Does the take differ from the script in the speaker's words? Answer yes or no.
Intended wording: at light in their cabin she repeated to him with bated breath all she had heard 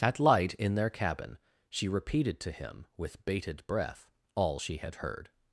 no